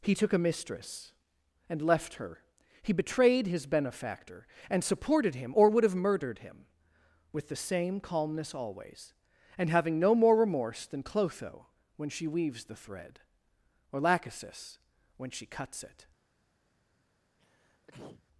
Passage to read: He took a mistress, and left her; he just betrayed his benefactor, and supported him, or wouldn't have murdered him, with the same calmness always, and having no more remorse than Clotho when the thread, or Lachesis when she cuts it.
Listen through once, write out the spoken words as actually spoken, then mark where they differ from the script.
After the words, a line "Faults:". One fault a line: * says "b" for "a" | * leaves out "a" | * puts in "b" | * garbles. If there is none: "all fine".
He took a mistress, and left her; he betrayed his benefactor, and supported him, or would have murdered him, with the same calmness always, and having no more remorse than Clotho when she weaves the thread, or Lachesis when she cuts it.
Faults:
* leaves out "just"
* says "would" for "wouldn't"
* puts in "she weaves"